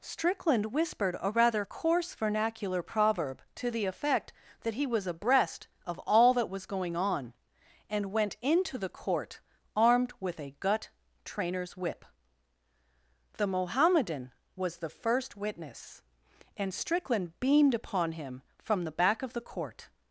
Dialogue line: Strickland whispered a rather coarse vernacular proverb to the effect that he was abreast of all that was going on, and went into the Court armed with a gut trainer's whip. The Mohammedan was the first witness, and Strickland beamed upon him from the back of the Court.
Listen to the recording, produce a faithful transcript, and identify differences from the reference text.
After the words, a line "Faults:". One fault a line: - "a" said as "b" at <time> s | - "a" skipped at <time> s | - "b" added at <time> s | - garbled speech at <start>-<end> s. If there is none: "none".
Strickland whispered a rather coarse vernacular proverb to the effect that he was abreast of all that was going on, and went into the Court armed with a gut trainer's whip. The Mohammedan was the first witness, and Strickland beamed upon him from the back of the Court.
Faults:
none